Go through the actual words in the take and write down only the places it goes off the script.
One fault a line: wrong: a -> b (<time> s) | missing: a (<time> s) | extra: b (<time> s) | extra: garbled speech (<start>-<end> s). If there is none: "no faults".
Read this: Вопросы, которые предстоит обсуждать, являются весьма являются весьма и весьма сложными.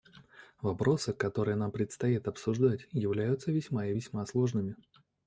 extra: нам (1.6 s)
missing: являются весьма (3.9 s)